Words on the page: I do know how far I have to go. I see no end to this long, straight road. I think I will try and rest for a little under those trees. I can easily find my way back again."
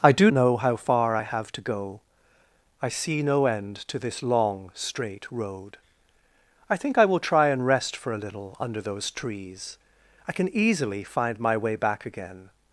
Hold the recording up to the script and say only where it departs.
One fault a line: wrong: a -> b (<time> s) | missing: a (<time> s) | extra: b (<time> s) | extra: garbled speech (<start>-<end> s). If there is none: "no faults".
no faults